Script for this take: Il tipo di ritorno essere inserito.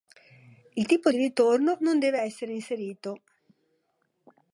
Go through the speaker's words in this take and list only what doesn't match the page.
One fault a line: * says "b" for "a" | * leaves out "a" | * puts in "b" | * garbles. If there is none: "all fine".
* puts in "non deve"